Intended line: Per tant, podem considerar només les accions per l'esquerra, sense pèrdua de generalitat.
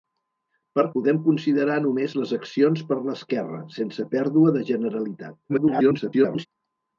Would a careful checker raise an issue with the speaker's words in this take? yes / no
yes